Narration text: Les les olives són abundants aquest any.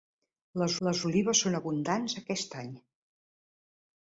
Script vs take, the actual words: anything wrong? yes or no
no